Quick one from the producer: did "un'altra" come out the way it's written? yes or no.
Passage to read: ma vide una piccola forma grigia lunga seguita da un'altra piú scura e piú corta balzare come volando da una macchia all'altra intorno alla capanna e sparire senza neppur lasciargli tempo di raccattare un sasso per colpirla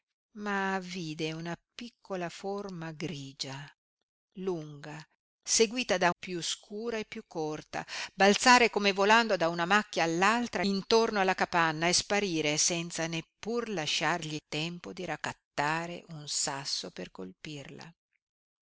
no